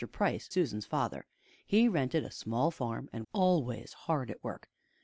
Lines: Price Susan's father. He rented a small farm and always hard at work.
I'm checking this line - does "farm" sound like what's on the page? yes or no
yes